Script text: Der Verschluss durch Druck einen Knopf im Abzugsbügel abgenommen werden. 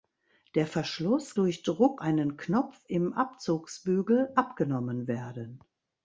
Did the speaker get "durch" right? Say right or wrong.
right